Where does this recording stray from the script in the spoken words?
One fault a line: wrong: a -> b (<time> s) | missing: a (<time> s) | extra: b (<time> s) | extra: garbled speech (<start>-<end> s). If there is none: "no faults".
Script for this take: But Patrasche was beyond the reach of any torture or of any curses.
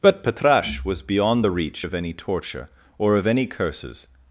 no faults